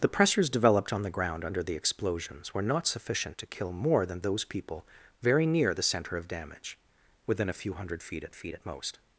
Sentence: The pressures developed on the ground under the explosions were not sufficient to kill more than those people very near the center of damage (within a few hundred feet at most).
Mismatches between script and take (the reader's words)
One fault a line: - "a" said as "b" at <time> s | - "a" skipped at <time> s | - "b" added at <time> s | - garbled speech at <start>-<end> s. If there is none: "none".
- "feet at" added at 8.3 s